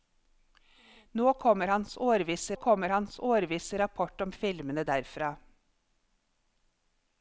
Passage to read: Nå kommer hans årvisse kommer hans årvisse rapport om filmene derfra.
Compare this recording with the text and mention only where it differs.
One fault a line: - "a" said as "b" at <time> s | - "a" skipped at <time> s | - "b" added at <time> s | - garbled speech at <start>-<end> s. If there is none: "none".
none